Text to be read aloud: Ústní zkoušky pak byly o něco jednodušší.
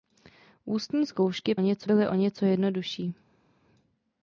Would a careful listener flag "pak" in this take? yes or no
yes